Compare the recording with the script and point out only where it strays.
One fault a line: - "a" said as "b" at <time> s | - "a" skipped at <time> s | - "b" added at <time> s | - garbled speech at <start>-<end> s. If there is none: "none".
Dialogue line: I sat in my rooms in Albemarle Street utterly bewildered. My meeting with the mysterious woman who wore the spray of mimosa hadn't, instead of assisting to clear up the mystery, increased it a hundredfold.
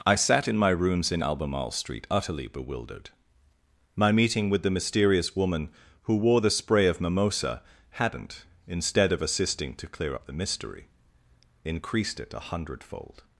none